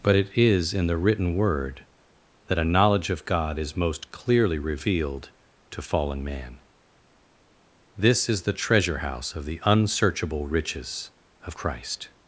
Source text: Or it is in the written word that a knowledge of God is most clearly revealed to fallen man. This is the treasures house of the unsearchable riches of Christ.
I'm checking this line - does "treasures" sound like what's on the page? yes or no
no